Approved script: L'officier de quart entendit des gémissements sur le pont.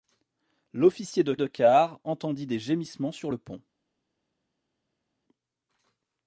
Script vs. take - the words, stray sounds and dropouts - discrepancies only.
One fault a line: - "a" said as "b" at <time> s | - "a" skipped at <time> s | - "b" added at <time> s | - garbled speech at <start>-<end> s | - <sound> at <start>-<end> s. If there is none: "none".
- "de" added at 1.4 s